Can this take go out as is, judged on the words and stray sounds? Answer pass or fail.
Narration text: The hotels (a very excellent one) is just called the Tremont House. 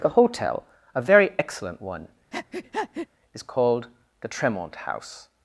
fail